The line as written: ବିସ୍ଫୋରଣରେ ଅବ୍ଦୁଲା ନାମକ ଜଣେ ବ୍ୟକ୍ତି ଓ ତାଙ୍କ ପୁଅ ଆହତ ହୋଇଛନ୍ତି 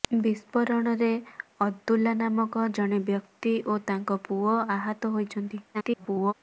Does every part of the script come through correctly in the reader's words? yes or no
no